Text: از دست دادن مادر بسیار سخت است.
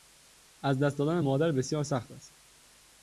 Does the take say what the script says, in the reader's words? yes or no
yes